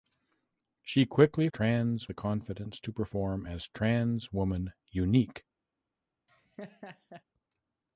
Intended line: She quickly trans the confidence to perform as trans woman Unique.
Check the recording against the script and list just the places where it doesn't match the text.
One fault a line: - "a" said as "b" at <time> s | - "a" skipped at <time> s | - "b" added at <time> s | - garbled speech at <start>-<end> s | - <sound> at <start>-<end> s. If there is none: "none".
- laugh at 6.3-7.2 s